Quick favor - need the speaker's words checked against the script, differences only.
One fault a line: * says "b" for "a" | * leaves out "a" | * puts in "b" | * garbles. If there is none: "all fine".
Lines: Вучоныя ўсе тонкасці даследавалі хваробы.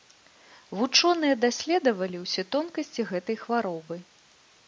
* puts in "даследавалі"
* says "гэтай" for "даследавалі"